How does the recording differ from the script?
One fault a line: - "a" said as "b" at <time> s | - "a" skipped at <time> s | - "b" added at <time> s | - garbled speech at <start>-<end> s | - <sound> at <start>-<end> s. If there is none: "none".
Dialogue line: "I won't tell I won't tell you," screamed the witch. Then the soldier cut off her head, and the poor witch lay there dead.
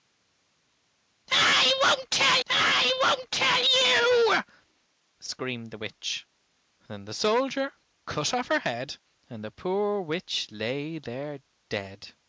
none